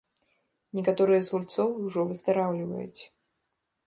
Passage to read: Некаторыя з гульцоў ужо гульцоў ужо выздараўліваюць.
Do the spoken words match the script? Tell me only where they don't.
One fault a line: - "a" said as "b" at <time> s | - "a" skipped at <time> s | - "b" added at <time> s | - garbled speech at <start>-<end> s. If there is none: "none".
- "гульцоў ужо" skipped at 2.0 s